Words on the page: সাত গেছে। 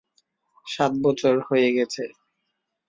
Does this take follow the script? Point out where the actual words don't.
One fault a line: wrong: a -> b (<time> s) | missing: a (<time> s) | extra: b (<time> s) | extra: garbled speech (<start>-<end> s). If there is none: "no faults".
extra: বছর হয়ে (1.0 s)